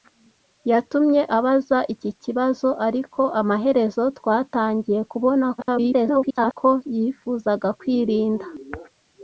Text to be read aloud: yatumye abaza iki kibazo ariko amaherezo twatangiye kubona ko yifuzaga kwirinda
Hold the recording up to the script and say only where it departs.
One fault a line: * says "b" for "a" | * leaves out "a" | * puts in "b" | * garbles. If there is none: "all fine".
* garbles